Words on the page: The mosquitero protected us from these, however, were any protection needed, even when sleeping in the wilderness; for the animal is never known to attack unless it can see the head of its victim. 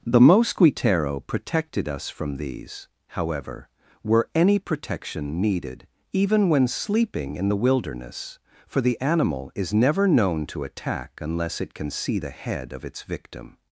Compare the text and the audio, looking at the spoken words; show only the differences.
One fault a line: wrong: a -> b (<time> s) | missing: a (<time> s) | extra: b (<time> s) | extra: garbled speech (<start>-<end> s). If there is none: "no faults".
no faults